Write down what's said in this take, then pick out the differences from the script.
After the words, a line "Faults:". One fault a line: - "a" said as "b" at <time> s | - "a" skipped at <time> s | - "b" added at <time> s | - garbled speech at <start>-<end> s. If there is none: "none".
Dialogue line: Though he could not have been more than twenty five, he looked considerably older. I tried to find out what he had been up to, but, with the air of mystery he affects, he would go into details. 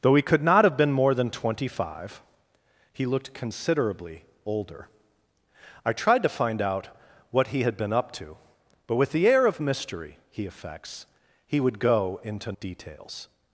Though he could not have been more than twenty five, he looked considerably older. I tried to find out what he had been up to, but, with the air of mystery he affects, he would go into details.
Faults:
none